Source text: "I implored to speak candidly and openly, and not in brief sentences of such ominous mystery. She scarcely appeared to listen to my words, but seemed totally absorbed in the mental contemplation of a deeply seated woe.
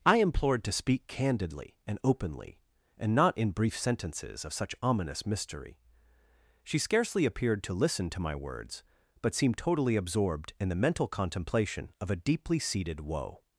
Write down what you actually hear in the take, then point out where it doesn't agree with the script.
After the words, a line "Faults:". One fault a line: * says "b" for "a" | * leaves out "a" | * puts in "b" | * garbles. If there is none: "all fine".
"I implored to speak candidly and openly, and not in brief sentences of such ominous mystery. She scarcely appeared to listen to my words, but seemed totally absorbed in the mental contemplation of a deeply seated woe.
Faults:
all fine